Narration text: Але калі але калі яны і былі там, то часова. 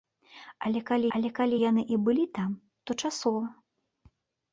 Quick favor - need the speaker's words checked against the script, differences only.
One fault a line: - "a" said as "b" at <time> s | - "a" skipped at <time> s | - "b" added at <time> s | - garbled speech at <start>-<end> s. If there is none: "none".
none